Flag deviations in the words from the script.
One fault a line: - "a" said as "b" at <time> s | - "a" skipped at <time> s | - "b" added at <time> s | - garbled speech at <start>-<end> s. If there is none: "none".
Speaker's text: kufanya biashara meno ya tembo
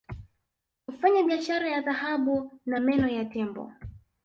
- "ya dhahabu na" added at 1.7 s